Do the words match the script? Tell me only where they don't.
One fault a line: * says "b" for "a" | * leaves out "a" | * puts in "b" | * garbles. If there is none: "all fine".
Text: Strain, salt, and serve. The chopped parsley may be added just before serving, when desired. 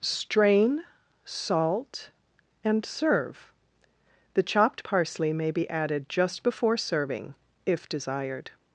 * says "if" for "when"